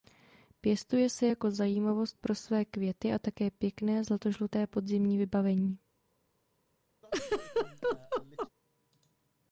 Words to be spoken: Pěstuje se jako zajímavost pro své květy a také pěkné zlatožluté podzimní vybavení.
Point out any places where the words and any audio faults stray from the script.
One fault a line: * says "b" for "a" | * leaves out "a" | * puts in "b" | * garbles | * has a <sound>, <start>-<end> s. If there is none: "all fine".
* has a laugh, 7.0-8.5 s